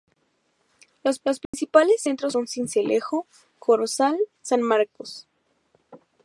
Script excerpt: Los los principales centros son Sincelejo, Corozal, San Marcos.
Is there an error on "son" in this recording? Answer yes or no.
no